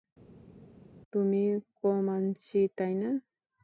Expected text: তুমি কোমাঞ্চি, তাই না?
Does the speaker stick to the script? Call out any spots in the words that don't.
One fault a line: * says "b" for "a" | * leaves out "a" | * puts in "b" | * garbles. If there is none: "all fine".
all fine